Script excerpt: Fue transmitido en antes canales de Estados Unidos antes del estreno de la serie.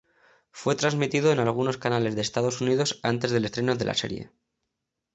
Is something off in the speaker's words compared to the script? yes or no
yes